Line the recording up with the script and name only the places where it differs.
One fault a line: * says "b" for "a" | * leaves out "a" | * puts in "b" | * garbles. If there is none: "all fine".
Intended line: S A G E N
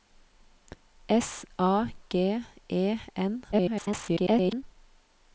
* garbles